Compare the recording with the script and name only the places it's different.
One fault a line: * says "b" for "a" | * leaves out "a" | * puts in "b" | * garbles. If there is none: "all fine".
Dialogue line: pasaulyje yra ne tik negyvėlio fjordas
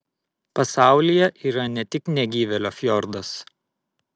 all fine